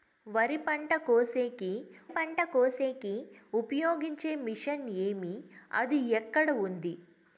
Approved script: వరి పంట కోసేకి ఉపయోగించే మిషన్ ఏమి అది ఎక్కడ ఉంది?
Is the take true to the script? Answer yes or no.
no